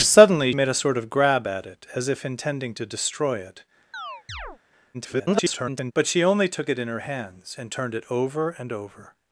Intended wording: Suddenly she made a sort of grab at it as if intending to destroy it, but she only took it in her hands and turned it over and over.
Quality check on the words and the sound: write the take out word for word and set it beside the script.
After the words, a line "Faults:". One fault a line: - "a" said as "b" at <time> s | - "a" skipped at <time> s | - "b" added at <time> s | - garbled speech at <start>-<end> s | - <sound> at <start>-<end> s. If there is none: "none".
Suddenly made a sort of grab at it as if intending to destroy it, [garbled] but she only took it in her hands and turned it over and over.
Faults:
- "she" skipped at 0.5 s
- chirp at 3.9-4.6 s
- garbled speech at 4.9-5.9 s